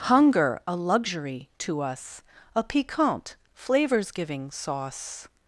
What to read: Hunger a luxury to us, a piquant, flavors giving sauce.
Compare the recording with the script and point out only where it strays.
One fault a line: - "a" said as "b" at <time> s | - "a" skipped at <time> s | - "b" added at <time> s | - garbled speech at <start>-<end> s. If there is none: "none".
none